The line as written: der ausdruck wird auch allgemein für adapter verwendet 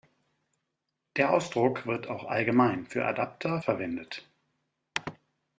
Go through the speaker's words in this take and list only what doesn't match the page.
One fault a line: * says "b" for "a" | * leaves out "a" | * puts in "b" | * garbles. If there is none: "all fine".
all fine